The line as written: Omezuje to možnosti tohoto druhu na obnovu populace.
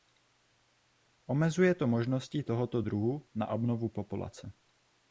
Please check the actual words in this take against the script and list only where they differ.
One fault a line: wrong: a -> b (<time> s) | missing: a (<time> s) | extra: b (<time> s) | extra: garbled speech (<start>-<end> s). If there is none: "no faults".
no faults